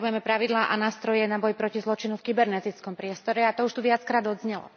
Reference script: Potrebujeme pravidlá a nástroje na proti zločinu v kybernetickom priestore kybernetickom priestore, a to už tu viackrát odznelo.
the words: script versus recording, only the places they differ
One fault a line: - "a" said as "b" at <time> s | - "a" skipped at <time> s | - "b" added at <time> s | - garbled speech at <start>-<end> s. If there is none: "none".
- "boj" added at 1.4 s
- "kybernetickom priestore" skipped at 3.4 s